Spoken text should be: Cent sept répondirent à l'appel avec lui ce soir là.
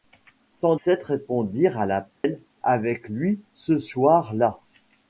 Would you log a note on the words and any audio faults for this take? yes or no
yes